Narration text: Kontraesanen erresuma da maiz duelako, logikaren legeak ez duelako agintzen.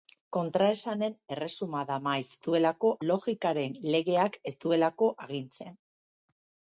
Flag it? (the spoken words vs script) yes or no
no